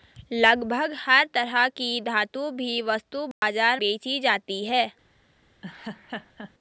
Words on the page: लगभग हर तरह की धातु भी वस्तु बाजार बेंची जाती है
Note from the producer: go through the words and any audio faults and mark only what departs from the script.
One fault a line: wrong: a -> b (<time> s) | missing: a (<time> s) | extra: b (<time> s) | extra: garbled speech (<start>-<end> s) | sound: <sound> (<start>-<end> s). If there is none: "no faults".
sound: dropout (3.3-3.4 s)
sound: laugh (5.6-6.5 s)